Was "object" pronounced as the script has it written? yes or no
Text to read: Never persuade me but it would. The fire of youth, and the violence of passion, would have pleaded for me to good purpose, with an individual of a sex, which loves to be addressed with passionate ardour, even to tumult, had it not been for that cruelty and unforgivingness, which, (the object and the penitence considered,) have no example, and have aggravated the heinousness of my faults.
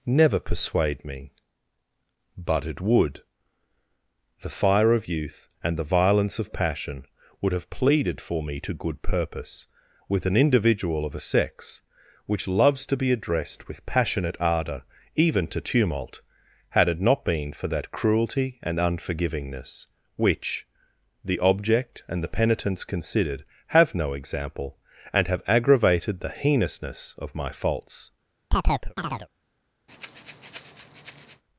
yes